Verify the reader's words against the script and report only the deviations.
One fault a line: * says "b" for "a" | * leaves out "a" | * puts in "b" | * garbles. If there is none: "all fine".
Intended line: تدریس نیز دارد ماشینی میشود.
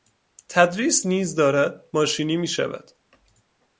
all fine